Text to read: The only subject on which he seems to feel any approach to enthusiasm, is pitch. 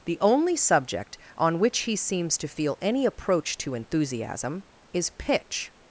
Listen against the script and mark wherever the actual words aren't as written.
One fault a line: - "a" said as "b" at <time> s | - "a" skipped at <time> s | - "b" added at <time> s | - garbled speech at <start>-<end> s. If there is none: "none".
none